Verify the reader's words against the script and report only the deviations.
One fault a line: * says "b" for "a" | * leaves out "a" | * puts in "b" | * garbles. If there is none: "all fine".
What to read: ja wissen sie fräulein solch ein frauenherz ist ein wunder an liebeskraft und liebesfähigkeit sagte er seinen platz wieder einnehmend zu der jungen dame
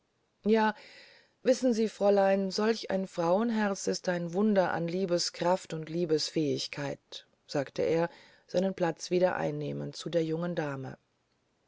all fine